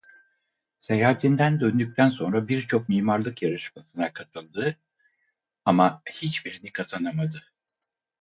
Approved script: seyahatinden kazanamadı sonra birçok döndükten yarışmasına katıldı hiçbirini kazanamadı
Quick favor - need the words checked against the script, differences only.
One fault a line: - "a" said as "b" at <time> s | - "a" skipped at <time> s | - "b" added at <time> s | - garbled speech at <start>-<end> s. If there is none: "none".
- "kazanamadı" said as "döndükten" at 1.6 s
- "döndükten" said as "mimarlık" at 2.9 s
- "ama" added at 5.6 s